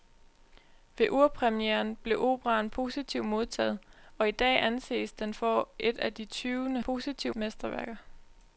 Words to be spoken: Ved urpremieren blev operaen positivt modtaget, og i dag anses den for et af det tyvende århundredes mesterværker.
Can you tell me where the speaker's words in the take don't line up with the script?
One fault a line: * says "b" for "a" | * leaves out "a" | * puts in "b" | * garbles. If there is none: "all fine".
* says "positivt" for "århundredes"